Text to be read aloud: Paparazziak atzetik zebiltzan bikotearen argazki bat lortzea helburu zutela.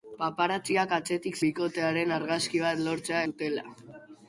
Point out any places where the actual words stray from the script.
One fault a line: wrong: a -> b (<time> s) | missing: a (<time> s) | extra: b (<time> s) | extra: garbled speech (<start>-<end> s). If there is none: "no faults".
missing: zebiltzan (1.4 s)
missing: helburu (3.2 s)